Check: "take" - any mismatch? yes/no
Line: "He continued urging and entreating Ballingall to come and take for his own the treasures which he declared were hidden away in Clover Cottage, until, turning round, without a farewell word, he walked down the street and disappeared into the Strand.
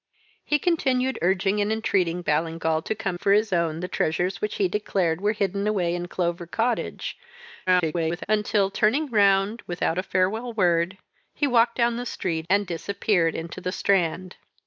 yes